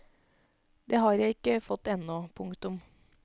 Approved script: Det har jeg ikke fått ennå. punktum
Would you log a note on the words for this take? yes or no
no